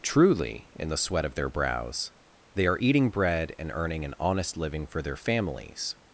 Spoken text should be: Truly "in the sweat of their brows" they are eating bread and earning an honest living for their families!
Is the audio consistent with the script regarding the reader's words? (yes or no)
yes